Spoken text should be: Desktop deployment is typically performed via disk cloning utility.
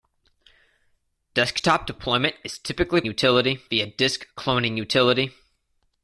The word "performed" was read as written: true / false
false